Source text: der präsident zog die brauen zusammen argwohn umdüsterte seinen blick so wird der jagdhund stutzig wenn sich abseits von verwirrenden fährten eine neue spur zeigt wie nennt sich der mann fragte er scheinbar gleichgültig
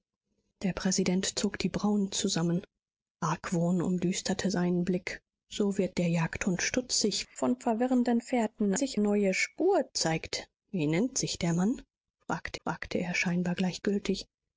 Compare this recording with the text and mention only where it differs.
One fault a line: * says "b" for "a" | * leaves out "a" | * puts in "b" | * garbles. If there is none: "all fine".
* leaves out "wenn sich abseits"
* says "sich" for "eine"
* puts in "fragte"